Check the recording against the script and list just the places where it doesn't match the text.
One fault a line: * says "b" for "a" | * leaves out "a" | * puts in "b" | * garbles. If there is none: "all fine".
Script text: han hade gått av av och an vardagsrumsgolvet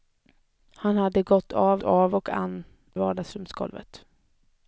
all fine